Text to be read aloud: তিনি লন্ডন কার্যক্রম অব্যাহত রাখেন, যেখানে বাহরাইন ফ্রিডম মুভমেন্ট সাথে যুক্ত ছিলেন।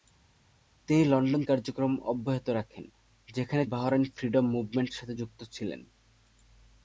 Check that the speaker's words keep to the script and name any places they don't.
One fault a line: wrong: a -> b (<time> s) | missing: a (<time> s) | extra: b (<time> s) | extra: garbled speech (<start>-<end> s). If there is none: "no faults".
no faults